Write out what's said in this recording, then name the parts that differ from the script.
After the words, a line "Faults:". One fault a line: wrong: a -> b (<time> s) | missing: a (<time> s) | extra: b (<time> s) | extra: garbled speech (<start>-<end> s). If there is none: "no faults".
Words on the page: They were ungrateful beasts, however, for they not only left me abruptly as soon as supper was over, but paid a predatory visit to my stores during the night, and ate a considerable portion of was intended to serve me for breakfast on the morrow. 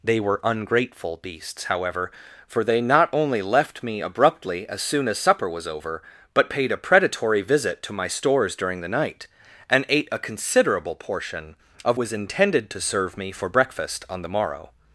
They were ungrateful beasts, however, for they not only left me abruptly as soon as supper was over, but paid a predatory visit to my stores during the night, and ate a considerable portion of was intended to serve me for breakfast on the morrow.
Faults:
no faults